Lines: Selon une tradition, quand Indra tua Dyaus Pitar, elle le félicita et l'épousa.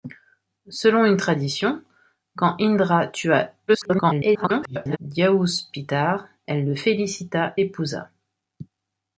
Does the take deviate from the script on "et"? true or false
true